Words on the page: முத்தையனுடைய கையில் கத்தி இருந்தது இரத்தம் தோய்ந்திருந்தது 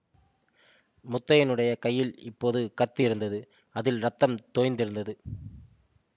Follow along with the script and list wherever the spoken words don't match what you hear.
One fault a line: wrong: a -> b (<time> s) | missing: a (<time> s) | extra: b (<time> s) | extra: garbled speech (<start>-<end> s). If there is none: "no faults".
extra: இப்போது (2.2 s)
extra: அதில் (3.7 s)